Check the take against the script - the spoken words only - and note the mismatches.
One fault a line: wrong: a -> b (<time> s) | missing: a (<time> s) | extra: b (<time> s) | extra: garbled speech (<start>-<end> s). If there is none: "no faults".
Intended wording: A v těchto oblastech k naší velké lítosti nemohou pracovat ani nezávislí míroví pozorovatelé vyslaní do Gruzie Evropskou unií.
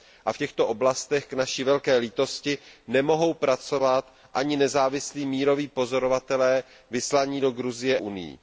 missing: Evropskou (8.0 s)